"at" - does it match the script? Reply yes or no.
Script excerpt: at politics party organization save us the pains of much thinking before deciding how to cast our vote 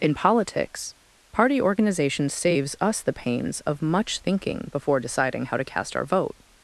no